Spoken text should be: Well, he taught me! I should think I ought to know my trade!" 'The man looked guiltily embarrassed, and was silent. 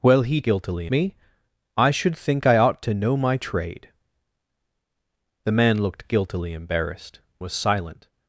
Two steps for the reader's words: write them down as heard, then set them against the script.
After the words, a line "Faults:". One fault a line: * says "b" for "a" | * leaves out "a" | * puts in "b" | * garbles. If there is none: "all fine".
Well, he guiltily me! I should think I ought to know my trade!" 'The man looked guiltily embarrassed, was silent.
Faults:
* says "guiltily" for "taught"
* leaves out "and"